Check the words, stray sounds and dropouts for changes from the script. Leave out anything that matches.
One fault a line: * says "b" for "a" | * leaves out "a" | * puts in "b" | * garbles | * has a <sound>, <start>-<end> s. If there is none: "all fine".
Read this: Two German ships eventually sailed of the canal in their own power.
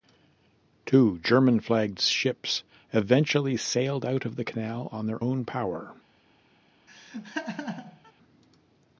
* puts in "flagged"
* puts in "out"
* says "on" for "in"
* has a laugh, 6.9-8.1 s